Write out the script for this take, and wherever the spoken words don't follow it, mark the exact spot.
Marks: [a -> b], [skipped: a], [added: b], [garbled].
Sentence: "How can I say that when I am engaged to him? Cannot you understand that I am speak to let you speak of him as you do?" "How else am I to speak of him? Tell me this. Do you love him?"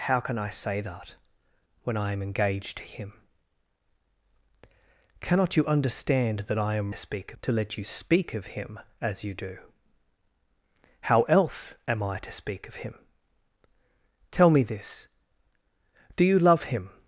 "How can I say that when I am engaged to him? Cannot you understand that I am speak to let you speak of him as you do?" "How else am I to speak of him? Tell me this. Do you love him?"